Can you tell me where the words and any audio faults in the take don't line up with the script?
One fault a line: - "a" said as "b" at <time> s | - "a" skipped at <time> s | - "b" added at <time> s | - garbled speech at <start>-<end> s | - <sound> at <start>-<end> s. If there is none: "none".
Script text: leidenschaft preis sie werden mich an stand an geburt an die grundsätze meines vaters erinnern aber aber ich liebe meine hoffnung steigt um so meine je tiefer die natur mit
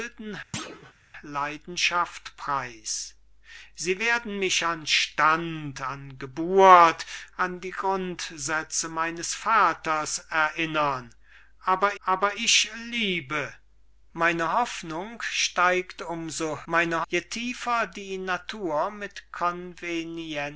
- thud at 0.5-0.9 s